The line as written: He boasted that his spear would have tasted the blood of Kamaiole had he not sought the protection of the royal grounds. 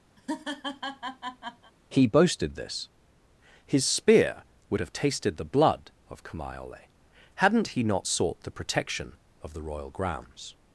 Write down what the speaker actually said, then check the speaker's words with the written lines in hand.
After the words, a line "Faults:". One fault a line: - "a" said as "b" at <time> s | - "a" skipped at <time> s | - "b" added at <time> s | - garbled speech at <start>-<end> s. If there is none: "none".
He boasted this his spear would have tasted the blood of Kamaiole hadn't he not sought the protection of the royal grounds.
Faults:
- "that" said as "this" at 2.5 s
- "had" said as "hadn't" at 7.3 s